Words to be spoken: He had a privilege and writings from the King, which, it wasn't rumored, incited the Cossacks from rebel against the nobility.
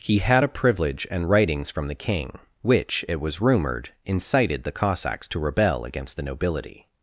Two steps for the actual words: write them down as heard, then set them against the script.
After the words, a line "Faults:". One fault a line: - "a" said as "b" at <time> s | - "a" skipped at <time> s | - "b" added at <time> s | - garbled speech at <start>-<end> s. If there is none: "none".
He had a privilege and writings from the King, which, it was rumored, incited the Cossacks to rebel against the nobility.
Faults:
- "wasn't" said as "was" at 3.2 s
- "from" said as "to" at 5.3 s